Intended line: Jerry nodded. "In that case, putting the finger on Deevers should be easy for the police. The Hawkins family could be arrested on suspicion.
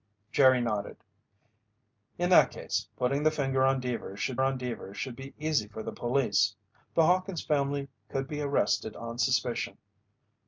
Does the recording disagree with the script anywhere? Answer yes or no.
yes